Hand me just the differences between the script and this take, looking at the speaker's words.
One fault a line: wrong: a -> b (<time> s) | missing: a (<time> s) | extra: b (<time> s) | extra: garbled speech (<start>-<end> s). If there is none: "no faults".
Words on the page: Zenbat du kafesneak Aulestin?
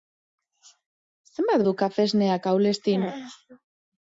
no faults